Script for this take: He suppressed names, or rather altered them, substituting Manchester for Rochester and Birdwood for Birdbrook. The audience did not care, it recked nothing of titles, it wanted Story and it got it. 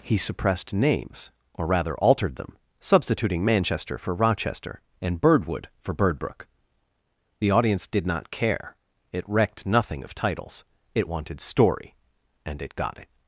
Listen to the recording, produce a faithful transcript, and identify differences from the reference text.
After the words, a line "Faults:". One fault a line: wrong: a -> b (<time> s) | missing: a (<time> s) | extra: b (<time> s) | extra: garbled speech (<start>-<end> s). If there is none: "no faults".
He suppressed names, or rather altered them, substituting Manchester for Rochester and Birdwood for Birdbrook. The audience did not care, it recked nothing of titles, it wanted Story and it got it.
Faults:
no faults